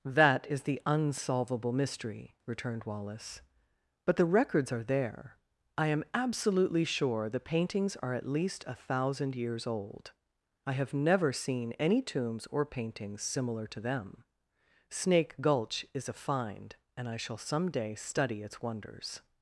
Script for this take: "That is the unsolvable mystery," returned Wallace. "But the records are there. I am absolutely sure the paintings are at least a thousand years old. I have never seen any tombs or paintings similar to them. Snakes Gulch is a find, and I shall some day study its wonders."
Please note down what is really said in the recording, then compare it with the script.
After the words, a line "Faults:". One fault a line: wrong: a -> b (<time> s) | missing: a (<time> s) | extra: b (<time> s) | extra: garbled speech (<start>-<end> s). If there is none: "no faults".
"That is the unsolvable mystery," returned Wallace. "But the records are there. I am absolutely sure the paintings are at least a thousand years old. I have never seen any tombs or paintings similar to them. Snake Gulch is a find, and I shall some day study its wonders."
Faults:
wrong: Snakes -> Snake (14.9 s)